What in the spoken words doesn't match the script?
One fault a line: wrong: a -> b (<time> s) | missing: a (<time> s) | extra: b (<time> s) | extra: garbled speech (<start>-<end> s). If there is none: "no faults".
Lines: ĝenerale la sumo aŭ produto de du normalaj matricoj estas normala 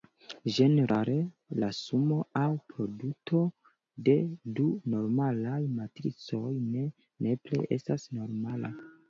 extra: ne nepre (6.7 s)